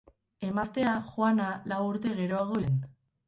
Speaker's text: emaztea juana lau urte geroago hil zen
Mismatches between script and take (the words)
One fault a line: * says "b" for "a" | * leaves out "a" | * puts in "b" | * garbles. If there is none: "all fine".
* leaves out "hil"